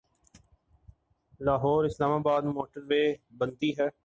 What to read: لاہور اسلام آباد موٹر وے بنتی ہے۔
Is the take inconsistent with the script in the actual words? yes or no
no